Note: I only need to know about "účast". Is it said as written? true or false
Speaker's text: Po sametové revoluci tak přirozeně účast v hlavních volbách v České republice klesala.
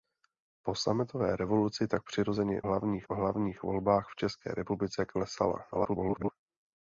false